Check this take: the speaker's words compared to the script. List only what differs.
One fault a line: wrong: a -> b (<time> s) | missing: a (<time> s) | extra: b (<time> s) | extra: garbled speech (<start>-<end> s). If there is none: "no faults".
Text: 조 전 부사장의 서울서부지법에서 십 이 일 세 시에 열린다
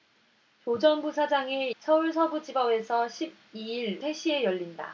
no faults